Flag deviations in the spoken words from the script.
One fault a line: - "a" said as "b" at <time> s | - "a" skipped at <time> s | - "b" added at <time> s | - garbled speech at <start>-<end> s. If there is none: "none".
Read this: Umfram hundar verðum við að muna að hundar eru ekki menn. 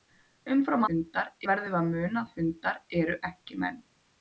none